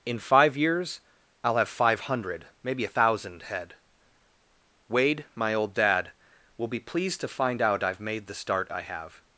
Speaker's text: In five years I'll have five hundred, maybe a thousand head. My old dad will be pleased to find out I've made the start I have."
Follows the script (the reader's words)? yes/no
no